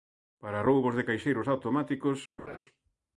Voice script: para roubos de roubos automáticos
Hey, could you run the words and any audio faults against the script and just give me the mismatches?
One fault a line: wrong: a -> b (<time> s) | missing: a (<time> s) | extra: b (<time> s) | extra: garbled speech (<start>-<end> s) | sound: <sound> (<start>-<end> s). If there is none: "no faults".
wrong: roubos -> caixeiros (1.1 s)
sound: laugh (2.4-2.6 s)